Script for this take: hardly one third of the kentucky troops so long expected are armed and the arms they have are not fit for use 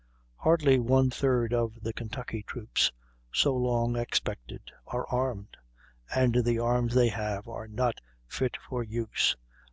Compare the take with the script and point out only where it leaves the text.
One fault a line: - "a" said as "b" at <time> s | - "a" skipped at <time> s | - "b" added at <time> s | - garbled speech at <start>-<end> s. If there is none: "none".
none